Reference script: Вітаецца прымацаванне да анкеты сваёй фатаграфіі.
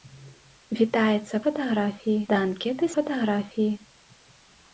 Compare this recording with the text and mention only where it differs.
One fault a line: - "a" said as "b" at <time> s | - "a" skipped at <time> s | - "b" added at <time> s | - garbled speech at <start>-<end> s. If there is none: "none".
- "прымацаванне" said as "фатаграфіі" at 1.4 s
- "сваёй" skipped at 2.8 s